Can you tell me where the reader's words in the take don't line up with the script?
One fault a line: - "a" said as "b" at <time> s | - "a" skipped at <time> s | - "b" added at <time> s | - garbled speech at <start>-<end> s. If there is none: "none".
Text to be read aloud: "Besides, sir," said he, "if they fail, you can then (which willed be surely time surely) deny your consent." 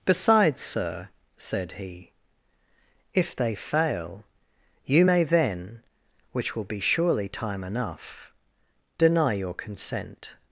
- "can" said as "may" at 5.0 s
- "willed" said as "will" at 6.5 s
- "surely" said as "enough" at 7.6 s